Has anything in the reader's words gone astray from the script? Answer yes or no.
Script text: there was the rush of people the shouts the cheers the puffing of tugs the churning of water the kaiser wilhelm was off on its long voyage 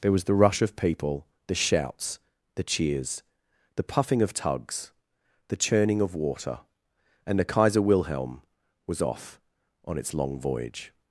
yes